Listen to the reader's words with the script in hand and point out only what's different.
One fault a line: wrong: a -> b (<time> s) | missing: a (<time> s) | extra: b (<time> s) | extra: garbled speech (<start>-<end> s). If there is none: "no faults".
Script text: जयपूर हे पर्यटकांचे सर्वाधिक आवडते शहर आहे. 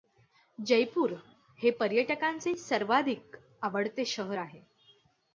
no faults